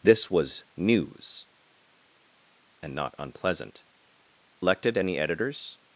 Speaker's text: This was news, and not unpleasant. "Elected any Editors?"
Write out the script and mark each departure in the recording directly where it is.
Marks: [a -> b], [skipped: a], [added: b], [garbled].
This was news, and not unpleasant. "Elected any Editors?"